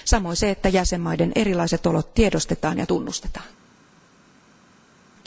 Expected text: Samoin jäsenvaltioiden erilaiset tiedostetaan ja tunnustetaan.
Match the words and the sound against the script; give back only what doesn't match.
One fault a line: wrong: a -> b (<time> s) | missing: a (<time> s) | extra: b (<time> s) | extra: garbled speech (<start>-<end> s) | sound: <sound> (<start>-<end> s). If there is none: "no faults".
extra: se että (0.3 s)
extra: olot (1.9 s)